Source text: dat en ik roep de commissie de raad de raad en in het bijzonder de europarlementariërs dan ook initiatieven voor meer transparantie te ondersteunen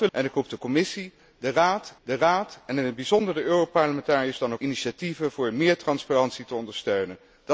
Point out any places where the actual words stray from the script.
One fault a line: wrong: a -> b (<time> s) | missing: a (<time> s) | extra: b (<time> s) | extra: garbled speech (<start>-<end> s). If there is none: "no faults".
no faults